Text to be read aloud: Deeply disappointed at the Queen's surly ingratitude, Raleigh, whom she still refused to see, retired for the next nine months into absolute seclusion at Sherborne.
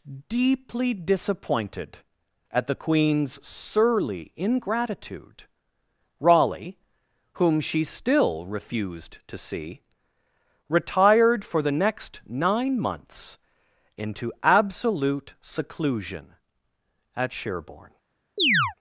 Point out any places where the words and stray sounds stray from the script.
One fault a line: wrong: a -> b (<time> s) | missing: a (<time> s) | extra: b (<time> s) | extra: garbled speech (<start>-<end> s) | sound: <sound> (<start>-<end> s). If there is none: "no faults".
sound: chirp (18.4-18.7 s)